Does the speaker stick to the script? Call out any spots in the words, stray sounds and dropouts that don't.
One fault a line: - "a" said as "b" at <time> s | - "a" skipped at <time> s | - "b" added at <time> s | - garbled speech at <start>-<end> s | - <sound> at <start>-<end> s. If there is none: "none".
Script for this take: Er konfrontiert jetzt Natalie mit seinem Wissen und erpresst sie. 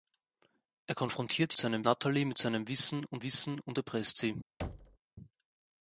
- "jetzt" said as "seinem" at 1.5 s
- "Wissen und" added at 3.2 s
- thud at 4.6-5.0 s